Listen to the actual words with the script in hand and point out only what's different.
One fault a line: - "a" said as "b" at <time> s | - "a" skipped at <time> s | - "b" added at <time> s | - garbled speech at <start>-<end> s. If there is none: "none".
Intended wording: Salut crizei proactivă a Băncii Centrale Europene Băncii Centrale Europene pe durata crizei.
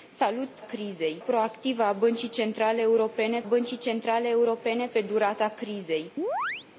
none